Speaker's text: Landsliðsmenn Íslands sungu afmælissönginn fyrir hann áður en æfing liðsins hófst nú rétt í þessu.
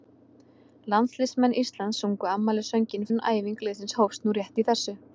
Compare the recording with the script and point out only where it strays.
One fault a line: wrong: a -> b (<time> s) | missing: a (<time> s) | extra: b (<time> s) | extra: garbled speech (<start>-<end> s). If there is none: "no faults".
missing: fyrir hann áður (3.1 s)